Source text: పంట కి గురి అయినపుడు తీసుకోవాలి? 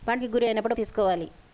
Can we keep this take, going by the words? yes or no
yes